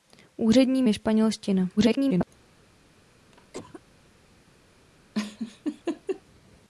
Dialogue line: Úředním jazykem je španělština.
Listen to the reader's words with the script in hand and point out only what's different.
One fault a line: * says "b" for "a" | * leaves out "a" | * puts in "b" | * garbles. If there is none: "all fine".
* leaves out "jazykem"
* garbles